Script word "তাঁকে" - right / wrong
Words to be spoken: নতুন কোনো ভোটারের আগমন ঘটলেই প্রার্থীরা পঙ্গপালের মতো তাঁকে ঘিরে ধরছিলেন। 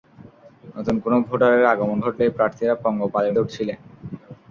wrong